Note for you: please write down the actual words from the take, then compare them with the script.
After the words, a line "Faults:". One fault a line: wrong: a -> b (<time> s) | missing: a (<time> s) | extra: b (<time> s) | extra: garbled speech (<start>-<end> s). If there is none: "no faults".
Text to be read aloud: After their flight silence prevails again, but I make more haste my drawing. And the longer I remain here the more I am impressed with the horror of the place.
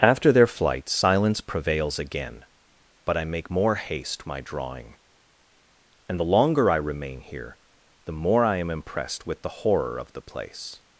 After their flight silence prevails again, but I make more haste my drawing. And the longer I remain here the more I am impressed with the horror of the place.
Faults:
no faults